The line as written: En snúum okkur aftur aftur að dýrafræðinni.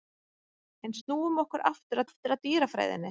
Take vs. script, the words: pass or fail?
pass